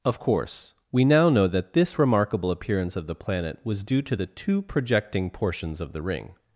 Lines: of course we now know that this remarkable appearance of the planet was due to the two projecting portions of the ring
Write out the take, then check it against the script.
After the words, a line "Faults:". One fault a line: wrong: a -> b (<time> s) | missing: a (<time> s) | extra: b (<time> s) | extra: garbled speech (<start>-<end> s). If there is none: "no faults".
of course we now know that this remarkable appearance of the planet was due to the two projecting portions of the ring
Faults:
no faults